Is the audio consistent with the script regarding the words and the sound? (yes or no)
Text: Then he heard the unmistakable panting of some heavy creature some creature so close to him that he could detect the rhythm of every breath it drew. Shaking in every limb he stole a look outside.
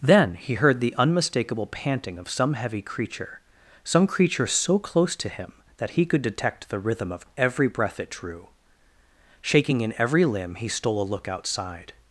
yes